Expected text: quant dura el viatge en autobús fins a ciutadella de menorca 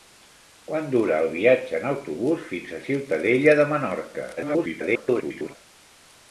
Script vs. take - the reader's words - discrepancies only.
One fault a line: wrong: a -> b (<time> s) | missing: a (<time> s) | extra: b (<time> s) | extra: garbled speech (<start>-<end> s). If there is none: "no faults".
extra: garbled speech (4.4-5.6 s)